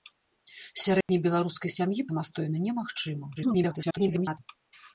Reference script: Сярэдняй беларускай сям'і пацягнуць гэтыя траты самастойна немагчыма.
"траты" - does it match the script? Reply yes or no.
no